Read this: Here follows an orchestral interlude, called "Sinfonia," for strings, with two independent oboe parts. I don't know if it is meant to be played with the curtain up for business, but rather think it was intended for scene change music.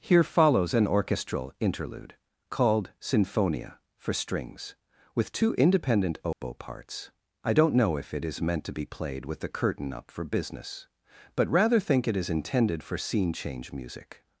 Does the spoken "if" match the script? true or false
true